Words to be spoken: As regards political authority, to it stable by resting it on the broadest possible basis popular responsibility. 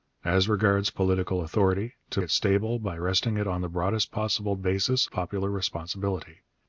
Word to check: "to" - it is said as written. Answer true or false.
true